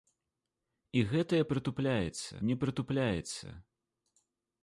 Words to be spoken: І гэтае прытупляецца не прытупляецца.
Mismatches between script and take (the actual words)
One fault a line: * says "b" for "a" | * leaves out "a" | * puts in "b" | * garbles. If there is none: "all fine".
all fine